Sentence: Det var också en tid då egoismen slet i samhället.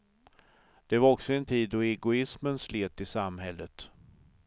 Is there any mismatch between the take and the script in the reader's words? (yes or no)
no